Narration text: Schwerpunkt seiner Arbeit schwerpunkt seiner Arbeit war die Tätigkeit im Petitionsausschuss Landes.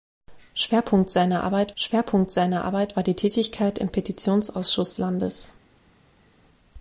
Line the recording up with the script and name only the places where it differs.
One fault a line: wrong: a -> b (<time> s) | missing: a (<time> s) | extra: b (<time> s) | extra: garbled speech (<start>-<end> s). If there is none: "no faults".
no faults